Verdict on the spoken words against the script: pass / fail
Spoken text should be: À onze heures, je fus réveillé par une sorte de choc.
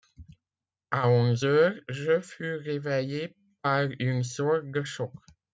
pass